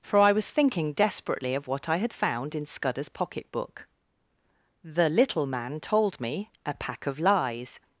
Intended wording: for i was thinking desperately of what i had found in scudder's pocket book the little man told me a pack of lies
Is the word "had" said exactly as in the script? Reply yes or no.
yes